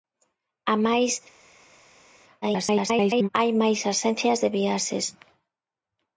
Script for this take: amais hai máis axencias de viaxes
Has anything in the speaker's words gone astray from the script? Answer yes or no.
yes